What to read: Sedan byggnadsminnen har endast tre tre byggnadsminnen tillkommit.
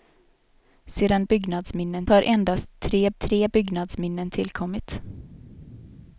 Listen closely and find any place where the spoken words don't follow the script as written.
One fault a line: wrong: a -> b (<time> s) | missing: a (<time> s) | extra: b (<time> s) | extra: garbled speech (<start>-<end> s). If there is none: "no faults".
no faults